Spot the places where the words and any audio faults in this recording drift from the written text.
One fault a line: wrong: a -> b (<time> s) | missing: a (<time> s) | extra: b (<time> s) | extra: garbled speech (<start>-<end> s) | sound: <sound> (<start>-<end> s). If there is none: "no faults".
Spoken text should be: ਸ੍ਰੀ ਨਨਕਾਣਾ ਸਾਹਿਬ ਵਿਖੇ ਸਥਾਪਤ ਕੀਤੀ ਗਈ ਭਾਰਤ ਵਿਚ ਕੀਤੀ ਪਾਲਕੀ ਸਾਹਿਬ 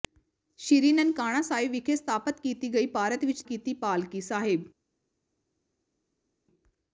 no faults